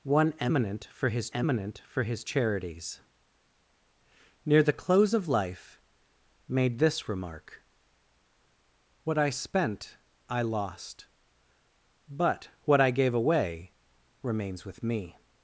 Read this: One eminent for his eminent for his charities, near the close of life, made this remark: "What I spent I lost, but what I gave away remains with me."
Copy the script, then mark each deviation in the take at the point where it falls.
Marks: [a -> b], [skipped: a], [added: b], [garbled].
One eminent for his eminent for his charities, near the close of life, made this remark: "What I spent I lost, but what I gave away remains with me."